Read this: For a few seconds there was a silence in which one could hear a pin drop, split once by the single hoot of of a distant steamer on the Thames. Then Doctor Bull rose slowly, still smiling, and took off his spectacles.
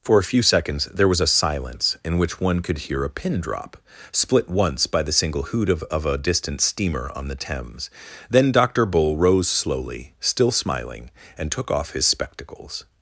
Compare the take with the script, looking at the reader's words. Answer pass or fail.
pass